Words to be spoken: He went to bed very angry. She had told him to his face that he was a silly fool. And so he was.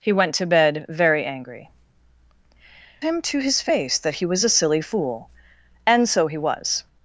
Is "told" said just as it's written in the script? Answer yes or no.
no